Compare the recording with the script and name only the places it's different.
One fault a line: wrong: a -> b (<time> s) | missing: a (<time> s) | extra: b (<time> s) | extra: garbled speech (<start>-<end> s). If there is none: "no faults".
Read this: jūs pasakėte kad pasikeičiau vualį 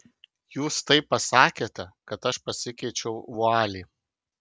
extra: taip (0.9 s)
extra: aš (2.3 s)